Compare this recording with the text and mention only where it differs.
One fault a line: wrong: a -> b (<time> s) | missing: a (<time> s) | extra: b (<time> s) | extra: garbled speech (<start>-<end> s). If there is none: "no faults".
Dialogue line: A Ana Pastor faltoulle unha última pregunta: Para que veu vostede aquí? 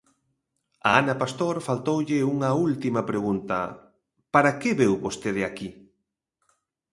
no faults